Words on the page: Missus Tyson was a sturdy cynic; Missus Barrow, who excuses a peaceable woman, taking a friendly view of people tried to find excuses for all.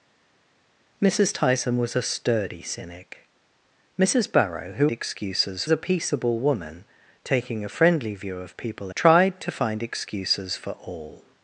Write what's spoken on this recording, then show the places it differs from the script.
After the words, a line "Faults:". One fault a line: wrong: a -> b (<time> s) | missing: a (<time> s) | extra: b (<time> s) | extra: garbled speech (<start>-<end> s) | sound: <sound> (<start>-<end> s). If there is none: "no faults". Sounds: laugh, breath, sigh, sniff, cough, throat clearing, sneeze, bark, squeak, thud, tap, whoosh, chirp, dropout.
Missus Tyson was a sturdy cynic; Missus Barrow, who excuses a peaceable woman, taking a friendly view of people tried to find excuses for all.
Faults:
no faults